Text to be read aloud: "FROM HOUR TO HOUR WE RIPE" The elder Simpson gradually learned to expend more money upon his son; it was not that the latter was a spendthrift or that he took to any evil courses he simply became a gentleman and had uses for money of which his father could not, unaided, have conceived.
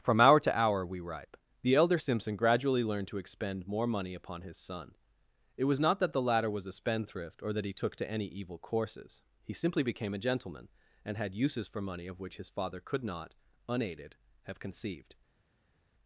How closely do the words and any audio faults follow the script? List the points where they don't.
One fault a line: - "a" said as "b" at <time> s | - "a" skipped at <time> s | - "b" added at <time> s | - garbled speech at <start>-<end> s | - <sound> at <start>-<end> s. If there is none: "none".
none